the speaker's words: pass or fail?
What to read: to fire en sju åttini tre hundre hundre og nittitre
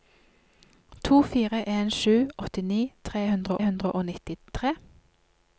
pass